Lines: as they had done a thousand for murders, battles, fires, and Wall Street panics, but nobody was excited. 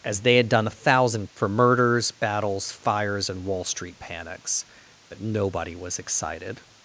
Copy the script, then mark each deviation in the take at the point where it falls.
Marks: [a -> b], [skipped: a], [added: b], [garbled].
as they had done a thousand for murders, battles, fires, and Wall Street panics, but nobody was excited.